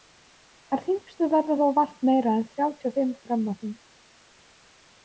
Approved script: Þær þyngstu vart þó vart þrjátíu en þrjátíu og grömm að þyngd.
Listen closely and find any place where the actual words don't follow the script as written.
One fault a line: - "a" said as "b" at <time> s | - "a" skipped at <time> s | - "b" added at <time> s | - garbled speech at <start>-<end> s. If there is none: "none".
- "vart" said as "verða" at 1.3 s
- "þrjátíu" said as "meira" at 2.1 s
- "fimm" added at 3.0 s